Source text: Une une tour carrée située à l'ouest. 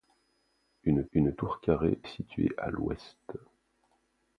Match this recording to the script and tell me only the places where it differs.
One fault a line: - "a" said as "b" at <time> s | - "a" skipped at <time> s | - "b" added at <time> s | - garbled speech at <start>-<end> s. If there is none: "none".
none